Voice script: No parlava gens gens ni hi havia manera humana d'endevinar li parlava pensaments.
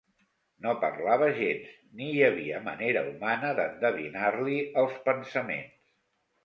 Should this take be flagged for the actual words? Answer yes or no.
yes